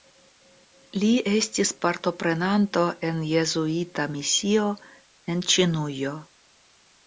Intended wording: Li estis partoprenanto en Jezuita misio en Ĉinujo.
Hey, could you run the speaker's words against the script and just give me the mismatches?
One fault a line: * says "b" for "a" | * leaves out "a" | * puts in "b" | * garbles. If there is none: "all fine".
all fine